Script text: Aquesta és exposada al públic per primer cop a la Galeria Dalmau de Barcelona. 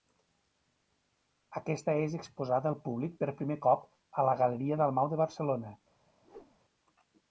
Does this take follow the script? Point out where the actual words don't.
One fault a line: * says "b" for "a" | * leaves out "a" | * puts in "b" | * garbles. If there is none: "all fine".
all fine